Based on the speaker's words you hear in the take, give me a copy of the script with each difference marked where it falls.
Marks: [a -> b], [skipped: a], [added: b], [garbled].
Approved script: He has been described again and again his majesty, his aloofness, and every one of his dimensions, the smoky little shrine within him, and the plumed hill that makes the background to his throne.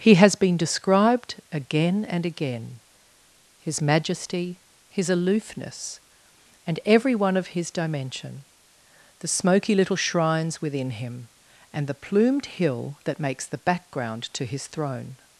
He has been described again and again his majesty, his aloofness, and every one of his [dimensions, -> dimension] the smoky little [shrine -> shrines] within him, and the plumed hill that makes the background to his throne.